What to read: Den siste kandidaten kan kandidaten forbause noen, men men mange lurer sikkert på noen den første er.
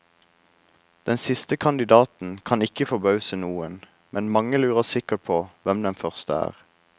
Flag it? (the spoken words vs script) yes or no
yes